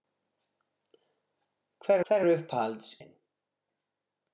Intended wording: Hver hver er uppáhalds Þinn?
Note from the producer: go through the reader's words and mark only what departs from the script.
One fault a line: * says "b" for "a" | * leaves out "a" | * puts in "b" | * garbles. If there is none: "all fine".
all fine